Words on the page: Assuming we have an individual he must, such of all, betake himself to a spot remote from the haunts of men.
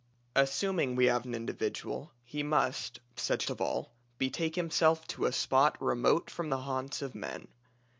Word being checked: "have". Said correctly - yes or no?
yes